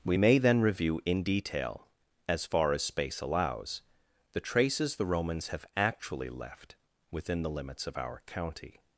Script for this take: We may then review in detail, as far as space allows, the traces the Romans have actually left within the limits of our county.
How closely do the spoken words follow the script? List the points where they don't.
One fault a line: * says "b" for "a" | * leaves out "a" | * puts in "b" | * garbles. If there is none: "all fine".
all fine